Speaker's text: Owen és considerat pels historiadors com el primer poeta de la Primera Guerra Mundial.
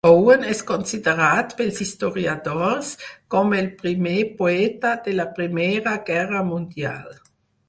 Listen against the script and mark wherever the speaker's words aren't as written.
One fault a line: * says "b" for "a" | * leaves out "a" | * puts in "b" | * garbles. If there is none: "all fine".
all fine